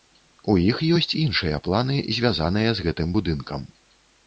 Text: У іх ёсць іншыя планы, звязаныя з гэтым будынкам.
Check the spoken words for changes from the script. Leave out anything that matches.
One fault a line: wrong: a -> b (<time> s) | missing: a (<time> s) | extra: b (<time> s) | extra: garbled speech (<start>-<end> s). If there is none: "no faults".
no faults